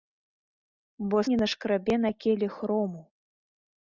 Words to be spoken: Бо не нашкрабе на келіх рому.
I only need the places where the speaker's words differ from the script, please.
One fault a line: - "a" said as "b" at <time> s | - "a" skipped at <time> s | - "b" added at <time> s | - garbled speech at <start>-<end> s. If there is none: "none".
none